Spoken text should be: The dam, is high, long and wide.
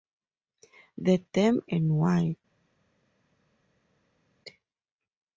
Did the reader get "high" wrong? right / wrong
wrong